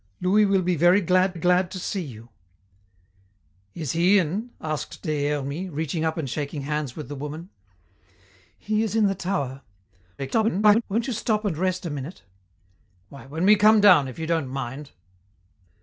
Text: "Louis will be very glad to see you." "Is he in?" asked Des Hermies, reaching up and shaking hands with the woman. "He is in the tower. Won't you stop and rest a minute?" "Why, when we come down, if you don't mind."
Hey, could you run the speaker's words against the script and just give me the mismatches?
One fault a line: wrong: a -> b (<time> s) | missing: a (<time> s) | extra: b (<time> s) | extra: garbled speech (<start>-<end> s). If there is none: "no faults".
extra: glad (1.3 s)
extra: garbled speech (10.2-10.8 s)